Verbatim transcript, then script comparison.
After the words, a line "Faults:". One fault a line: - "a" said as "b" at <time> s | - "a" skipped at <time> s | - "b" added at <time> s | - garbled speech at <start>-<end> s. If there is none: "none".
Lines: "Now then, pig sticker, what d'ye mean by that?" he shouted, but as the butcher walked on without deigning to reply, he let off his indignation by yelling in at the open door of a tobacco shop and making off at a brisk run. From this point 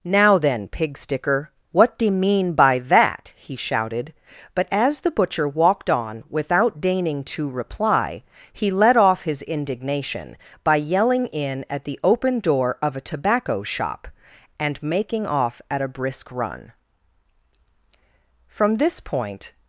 "Now then, pig sticker, what d'ye mean by that?" he shouted, but as the butcher walked on without deigning to reply, he let off his indignation by yelling in at the open door of a tobacco shop and making off at a brisk run. From this point
Faults:
none